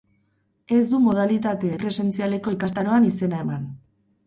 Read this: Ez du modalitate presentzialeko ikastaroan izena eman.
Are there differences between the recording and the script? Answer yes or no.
no